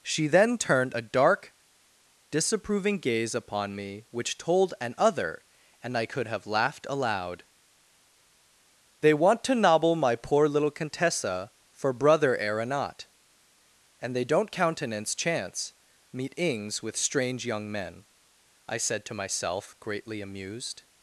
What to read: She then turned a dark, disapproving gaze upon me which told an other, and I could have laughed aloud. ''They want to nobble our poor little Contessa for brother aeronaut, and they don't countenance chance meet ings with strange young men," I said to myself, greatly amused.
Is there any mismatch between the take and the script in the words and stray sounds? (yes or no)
yes